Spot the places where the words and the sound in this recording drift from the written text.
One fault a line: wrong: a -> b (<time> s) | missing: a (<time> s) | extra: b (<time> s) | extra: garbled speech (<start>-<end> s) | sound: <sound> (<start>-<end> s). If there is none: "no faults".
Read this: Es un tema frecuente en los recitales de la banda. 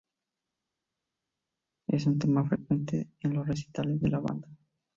no faults